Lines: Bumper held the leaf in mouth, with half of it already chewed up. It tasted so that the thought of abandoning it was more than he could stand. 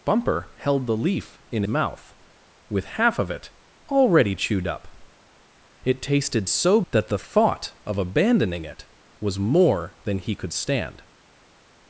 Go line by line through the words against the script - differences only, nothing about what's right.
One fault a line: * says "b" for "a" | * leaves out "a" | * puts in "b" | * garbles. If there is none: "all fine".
all fine